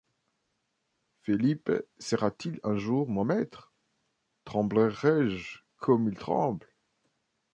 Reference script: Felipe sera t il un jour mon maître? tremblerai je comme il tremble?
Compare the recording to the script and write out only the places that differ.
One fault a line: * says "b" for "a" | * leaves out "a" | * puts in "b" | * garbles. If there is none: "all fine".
all fine